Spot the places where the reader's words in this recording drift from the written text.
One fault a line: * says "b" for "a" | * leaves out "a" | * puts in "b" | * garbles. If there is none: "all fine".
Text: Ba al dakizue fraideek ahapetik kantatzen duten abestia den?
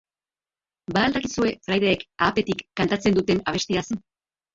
all fine